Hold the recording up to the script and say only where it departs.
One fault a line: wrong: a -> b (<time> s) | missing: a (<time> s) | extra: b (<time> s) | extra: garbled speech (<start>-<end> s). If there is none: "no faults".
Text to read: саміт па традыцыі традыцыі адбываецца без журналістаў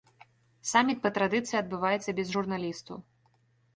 missing: традыцыі (1.6 s)